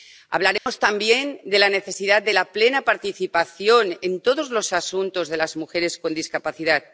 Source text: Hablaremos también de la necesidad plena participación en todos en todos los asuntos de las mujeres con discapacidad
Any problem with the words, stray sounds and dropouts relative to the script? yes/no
yes